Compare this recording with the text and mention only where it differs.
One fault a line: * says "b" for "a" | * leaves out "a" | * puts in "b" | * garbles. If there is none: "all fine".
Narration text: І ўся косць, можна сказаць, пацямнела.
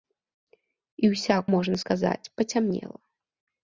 * leaves out "косць"